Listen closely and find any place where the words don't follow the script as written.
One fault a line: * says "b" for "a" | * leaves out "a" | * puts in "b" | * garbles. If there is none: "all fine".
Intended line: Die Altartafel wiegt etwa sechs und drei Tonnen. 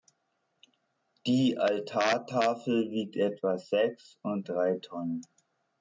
all fine